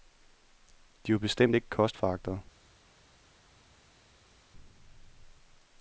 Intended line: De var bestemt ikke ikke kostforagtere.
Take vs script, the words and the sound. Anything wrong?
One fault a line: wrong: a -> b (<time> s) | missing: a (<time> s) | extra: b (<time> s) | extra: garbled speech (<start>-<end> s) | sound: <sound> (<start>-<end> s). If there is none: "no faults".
missing: ikke (1.7 s)